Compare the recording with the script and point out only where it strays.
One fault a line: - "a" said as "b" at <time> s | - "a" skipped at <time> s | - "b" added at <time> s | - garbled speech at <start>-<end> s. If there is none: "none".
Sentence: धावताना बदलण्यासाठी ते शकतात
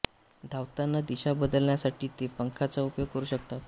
- "दिशा" added at 1.1 s
- "पंखांचा उपयोग करू" added at 2.4 s